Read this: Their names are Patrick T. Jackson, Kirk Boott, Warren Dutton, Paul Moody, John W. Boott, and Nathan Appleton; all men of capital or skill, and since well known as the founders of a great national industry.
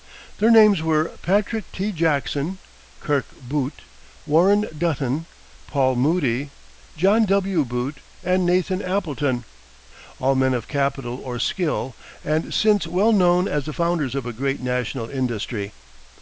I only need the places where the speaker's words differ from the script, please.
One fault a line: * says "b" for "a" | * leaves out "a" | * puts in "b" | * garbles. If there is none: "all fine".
* says "were" for "are"